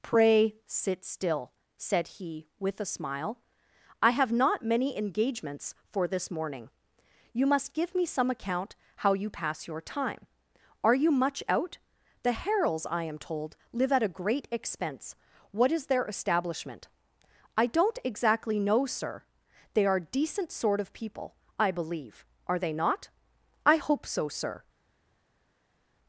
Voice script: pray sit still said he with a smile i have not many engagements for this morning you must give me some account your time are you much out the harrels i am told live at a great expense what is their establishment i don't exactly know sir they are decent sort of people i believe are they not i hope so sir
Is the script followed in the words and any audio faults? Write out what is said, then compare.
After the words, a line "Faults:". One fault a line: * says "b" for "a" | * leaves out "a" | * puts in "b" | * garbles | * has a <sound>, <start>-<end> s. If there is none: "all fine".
pray sit still said he with a smile i have not many engagements for this morning you must give me some account how you pass your time are you much out the harrels i am told live at a great expense what is their establishment i don't exactly know sir they are decent sort of people i believe are they not i hope so sir
Faults:
* puts in "how you pass"